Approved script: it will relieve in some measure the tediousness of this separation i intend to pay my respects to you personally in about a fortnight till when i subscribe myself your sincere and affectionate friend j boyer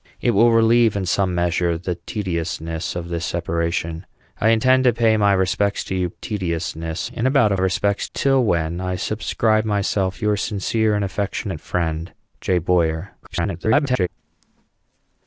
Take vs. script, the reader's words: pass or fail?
fail